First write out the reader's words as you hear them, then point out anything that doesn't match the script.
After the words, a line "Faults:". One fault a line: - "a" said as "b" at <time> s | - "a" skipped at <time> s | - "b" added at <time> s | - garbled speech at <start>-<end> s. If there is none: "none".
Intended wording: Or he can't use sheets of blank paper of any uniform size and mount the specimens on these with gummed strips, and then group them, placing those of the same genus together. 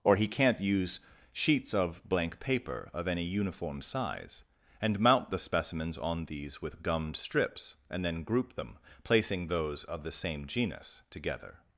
Or he can't use sheets of blank paper of any uniform size and mount the specimens on these with gummed strips, and then group them, placing those of the same genus together.
Faults:
none